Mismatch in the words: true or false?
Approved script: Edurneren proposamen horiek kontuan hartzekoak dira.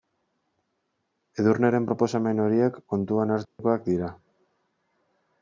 false